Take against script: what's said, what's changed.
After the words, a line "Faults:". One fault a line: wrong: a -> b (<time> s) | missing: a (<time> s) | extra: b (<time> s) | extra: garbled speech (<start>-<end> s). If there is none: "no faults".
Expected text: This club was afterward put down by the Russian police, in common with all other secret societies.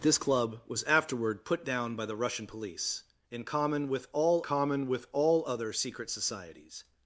This club was afterward put down by the Russian police, in common with all common with all other secret societies.
Faults:
extra: common with all (4.4 s)